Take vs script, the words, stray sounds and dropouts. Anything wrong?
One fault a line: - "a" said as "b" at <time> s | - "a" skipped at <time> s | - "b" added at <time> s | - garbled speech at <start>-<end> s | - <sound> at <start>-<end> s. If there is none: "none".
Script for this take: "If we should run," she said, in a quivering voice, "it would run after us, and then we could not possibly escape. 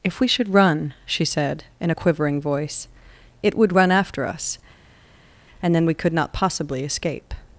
none